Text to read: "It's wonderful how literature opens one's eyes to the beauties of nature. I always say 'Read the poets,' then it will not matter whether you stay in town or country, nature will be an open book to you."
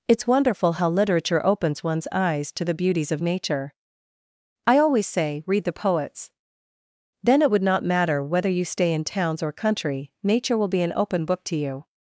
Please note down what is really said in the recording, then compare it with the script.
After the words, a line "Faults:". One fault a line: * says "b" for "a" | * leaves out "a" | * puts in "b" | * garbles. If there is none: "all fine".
"It's wonderful how literature opens one's eyes to the beauties of nature. I always say 'Read the poets,' then it would not matter whether you stay in towns or country, nature will be an open book to you."
Faults:
* says "would" for "will"
* says "towns" for "town"